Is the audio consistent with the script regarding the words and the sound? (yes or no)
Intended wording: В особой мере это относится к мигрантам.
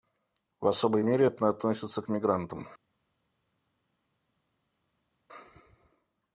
yes